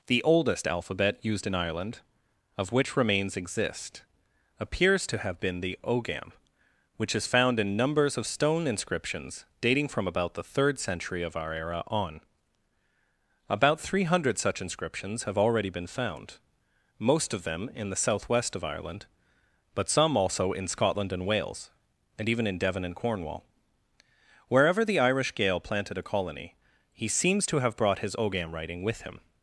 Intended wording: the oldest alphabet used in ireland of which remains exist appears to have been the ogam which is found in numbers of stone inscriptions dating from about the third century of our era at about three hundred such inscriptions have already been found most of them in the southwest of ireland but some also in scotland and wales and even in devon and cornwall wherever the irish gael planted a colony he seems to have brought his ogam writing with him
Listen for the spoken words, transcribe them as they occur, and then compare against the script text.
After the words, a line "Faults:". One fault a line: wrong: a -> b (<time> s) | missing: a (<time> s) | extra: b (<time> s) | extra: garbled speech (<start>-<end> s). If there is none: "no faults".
the oldest alphabet used in ireland of which remains exist appears to have been the ogam which is found in numbers of stone inscriptions dating from about the third century of our era on about three hundred such inscriptions have already been found most of them in the southwest of ireland but some also in scotland and wales and even in devon and cornwall wherever the irish gael planted a colony he seems to have brought his ogam writing with him
Faults:
wrong: at -> on (11.9 s)